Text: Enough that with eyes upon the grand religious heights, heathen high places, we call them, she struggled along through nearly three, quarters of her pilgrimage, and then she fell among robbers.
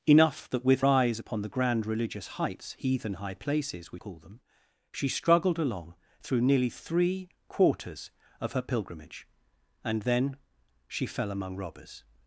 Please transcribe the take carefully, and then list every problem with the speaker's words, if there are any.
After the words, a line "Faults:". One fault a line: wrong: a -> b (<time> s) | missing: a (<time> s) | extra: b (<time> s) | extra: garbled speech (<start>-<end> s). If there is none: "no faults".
Enough that with eyes upon the grand religious heights, heathen high places, we call them, she struggled along through nearly three, quarters of her pilgrimage, and then she fell among robbers.
Faults:
no faults